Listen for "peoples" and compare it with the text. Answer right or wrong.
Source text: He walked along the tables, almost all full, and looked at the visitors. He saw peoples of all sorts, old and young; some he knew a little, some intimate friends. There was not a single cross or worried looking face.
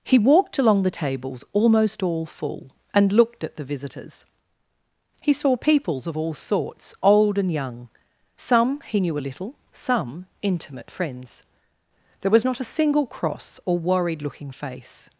right